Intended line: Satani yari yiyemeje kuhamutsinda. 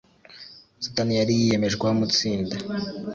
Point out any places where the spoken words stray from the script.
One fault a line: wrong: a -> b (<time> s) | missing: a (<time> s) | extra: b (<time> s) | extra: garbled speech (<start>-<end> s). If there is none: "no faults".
no faults